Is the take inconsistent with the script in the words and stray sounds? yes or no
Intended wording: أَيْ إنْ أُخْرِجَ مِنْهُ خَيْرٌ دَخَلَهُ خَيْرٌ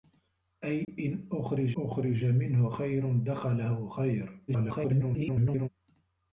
yes